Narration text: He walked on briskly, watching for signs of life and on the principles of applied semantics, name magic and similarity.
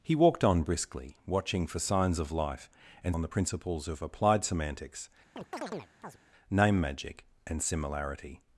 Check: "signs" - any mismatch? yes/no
no